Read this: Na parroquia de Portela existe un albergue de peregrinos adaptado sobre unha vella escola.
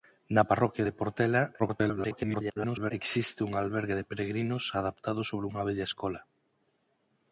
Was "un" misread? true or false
false